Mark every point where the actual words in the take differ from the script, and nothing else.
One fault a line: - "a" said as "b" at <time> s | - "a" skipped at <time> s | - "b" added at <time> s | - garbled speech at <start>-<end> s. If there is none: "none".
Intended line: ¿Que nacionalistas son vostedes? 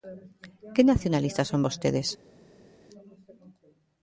none